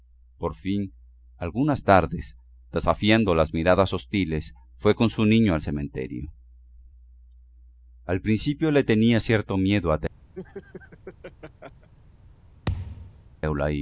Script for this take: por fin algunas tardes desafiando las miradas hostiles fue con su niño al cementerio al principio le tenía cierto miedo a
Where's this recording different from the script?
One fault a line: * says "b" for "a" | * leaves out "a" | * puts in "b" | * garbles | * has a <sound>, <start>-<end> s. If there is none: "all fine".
* has a laugh, 10.3-11.9 s
* has a thud, 12.7-13.3 s